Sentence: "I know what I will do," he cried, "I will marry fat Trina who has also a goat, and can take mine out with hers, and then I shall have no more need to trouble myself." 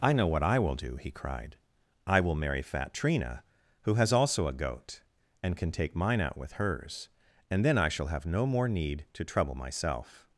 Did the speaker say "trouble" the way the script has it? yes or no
yes